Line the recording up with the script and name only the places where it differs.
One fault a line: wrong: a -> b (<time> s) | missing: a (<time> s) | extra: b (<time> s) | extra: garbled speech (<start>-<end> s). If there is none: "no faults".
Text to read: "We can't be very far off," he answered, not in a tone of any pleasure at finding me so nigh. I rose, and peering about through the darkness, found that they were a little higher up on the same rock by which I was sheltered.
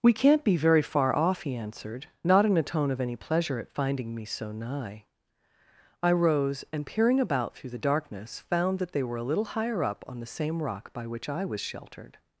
no faults